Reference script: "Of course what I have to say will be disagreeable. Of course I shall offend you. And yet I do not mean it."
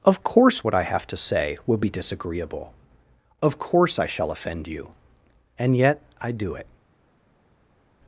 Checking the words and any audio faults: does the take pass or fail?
fail